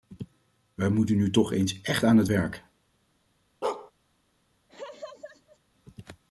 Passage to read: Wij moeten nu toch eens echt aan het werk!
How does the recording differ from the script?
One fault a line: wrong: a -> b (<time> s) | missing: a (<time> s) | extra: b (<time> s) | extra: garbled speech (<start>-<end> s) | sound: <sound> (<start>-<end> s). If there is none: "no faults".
sound: bark (3.6-3.9 s)
sound: laugh (4.7-5.6 s)